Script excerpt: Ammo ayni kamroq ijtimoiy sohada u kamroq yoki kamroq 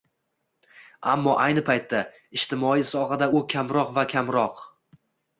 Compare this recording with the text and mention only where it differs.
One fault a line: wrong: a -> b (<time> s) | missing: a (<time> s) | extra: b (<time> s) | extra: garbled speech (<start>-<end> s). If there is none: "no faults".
wrong: kamroq -> paytda (1.7 s)
wrong: yoki -> va (4.0 s)